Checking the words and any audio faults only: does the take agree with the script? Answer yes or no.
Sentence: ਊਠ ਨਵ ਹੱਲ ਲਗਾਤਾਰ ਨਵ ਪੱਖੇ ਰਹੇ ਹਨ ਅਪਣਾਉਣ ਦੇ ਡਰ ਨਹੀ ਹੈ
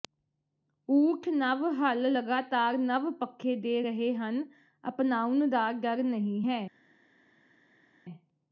no